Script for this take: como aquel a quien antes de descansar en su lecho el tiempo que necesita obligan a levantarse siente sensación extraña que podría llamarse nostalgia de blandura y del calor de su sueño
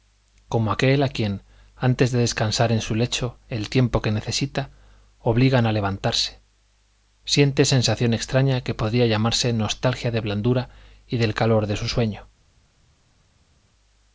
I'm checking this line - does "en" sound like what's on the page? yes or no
yes